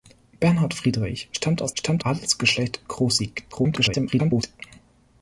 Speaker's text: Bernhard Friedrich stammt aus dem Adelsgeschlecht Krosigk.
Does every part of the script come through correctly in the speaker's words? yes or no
no